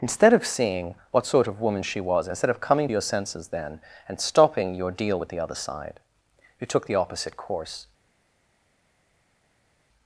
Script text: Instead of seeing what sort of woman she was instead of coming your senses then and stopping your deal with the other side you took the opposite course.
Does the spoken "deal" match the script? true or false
true